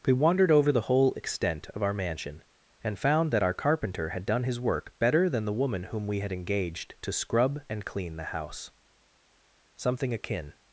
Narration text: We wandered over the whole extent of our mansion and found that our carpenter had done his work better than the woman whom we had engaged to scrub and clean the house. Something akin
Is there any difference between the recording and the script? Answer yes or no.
no